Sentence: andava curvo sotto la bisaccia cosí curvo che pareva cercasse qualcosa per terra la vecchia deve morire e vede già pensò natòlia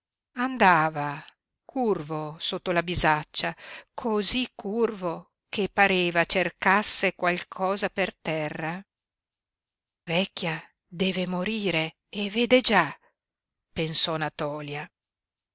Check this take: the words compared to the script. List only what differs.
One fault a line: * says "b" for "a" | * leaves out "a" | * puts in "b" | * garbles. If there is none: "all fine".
* leaves out "la"